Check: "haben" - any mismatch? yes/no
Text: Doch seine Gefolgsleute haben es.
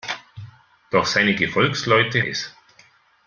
yes